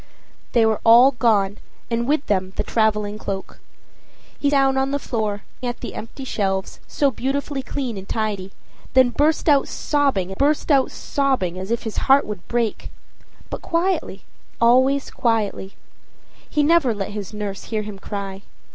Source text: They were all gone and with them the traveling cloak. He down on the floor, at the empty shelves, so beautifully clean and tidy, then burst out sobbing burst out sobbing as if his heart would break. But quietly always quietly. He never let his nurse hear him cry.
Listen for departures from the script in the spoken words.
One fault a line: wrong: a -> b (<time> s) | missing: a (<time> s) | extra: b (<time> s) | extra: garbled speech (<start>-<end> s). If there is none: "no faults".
no faults